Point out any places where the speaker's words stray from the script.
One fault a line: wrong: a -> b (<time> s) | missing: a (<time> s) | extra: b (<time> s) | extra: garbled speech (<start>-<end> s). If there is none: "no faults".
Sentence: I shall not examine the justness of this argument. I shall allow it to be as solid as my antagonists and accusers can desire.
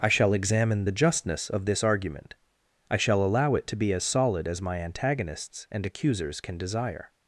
missing: not (0.3 s)